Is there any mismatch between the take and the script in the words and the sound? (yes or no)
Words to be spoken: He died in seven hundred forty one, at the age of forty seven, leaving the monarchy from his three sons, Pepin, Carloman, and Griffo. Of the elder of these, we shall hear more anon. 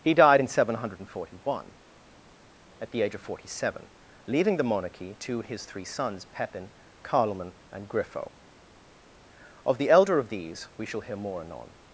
yes